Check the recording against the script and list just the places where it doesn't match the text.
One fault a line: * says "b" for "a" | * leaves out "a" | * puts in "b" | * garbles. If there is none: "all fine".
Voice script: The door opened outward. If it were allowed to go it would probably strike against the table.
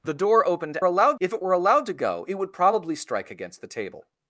* says "allowed" for "outward"